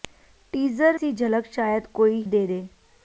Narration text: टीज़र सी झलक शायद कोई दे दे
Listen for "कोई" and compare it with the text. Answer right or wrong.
right